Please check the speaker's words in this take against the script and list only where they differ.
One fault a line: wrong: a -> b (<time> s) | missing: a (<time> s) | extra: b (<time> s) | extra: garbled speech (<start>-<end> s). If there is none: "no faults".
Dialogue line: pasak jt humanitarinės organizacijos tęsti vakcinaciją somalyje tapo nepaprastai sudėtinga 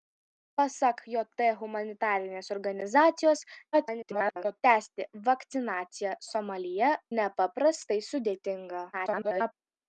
extra: garbled speech (3.7-4.6 s)
missing: tapo (6.9 s)
extra: garbled speech (8.9-9.5 s)